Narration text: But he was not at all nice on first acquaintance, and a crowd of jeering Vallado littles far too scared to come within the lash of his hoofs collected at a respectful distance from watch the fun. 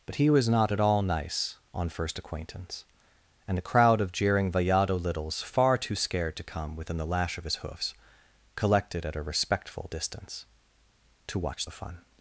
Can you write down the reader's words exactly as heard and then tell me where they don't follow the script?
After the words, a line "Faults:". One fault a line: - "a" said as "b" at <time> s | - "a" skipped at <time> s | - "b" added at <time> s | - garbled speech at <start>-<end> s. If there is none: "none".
But he was not at all nice on first acquaintance, and a crowd of jeering Vallado littles far too scared to come within the lash of his hoofs collected at a respectful distance to watch the fun.
Faults:
- "from" said as "to" at 11.3 s